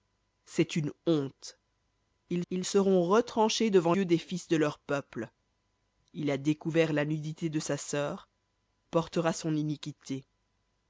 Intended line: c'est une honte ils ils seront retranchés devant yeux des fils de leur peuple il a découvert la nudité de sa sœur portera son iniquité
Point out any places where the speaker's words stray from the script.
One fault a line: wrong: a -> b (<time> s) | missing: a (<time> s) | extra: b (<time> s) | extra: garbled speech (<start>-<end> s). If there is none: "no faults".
no faults